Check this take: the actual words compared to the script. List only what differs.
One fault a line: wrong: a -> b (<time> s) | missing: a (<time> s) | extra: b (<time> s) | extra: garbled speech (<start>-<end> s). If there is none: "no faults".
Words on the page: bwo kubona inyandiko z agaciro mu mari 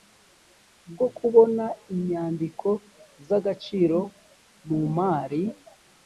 no faults